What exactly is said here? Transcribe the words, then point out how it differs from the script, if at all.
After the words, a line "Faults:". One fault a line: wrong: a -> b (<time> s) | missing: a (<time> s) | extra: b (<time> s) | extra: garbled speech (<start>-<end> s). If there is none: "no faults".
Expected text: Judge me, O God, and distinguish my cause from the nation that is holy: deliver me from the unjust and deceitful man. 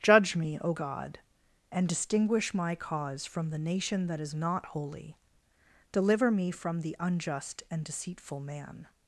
Judge me, O God, and distinguish my cause from the nation that is not holy: deliver me from the unjust and deceitful man.
Faults:
extra: not (4.3 s)